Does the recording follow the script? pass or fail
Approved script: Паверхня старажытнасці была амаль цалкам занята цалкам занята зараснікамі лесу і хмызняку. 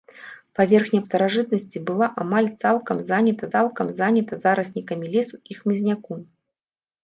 pass